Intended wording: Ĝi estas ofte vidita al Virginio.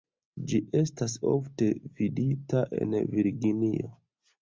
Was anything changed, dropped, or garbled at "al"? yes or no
yes